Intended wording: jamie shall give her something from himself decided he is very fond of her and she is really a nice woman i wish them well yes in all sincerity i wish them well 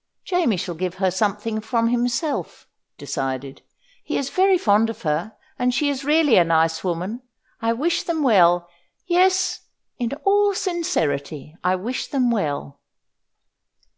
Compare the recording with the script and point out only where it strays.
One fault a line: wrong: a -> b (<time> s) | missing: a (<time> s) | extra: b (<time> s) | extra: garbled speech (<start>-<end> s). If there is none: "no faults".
no faults